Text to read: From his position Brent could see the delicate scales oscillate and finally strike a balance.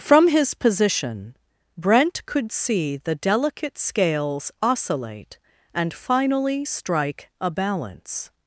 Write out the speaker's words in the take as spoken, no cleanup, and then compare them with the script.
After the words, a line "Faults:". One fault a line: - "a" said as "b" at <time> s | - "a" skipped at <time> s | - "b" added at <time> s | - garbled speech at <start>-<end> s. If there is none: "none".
From his position Brent could see the delicate scales oscillate and finally strike a balance.
Faults:
none